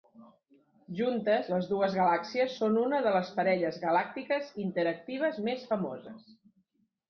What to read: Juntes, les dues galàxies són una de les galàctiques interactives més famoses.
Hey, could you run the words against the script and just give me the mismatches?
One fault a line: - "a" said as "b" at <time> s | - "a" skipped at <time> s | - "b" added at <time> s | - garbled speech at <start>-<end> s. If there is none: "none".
- "parelles" added at 3.4 s